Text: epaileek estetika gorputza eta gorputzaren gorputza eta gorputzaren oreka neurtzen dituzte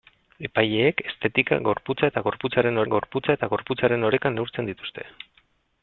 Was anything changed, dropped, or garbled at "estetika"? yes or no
no